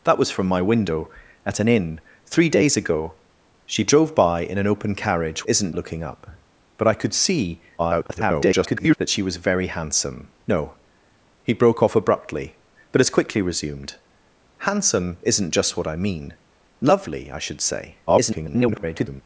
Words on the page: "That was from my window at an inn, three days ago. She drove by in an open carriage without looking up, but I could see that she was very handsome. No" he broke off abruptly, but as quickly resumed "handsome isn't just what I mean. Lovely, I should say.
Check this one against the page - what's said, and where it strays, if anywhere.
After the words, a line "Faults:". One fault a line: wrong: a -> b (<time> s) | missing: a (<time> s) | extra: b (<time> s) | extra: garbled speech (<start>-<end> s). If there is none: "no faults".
"That was from my window at an inn, three days ago. She drove by in an open carriage isn't looking up, but I could see [garbled] that she was very handsome. No" he broke off abruptly, but as quickly resumed "handsome isn't just what I mean. Lovely, I should say. [garbled]
Faults:
wrong: without -> isn't (5.4 s)
extra: garbled speech (7.8-9.0 s)
extra: garbled speech (18.1-19.2 s)